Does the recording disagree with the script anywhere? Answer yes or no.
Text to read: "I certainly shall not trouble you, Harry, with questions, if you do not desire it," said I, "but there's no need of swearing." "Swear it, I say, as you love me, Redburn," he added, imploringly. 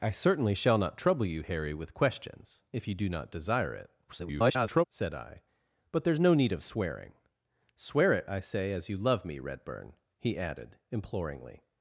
yes